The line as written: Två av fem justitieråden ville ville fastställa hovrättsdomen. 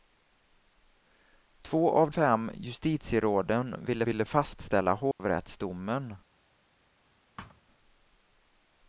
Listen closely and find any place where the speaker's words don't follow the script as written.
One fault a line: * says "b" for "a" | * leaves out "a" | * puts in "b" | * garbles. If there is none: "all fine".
all fine